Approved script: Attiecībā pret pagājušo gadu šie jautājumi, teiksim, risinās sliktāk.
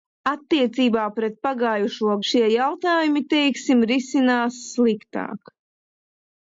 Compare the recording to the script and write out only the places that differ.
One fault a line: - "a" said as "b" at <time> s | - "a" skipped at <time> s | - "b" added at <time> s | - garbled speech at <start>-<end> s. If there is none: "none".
- "gadu" skipped at 2.2 s